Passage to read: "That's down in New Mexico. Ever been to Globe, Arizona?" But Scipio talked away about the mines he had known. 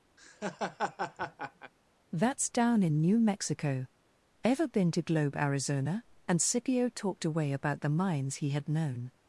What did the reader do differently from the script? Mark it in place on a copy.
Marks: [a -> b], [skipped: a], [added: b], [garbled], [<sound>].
[laugh] "That's down in New Mexico. Ever been to Globe, Arizona?" [But -> And] Scipio talked away about the mines he had known.